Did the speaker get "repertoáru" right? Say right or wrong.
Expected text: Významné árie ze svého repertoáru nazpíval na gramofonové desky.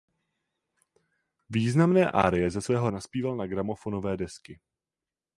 wrong